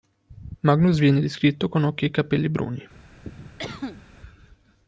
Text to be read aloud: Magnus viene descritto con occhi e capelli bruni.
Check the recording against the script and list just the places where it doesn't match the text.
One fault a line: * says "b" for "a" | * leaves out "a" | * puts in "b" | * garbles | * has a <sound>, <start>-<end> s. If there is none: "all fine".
* has a cough, 3.2-4.0 s